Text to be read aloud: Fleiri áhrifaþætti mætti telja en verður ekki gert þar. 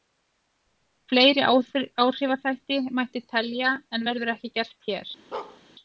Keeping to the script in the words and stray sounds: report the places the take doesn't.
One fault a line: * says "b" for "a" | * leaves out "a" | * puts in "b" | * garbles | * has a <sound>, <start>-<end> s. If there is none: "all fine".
* says "hér" for "þar"
* has a bark, 5.3-5.6 s